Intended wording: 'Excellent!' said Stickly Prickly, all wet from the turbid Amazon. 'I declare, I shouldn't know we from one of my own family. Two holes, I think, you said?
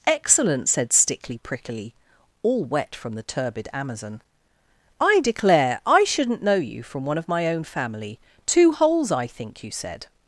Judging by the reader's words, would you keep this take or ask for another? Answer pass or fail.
fail